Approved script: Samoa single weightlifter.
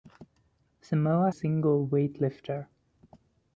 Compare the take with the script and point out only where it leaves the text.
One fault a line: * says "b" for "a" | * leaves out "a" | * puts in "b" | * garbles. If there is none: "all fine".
all fine